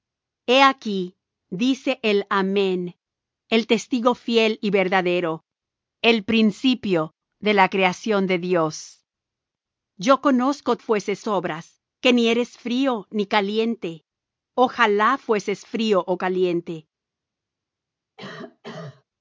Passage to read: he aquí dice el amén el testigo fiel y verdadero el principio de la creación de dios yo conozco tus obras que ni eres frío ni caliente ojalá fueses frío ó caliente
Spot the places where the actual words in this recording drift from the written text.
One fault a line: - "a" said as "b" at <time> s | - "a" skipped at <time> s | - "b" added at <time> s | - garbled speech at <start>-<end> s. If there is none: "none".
- "tus" said as "fueses" at 10.8 s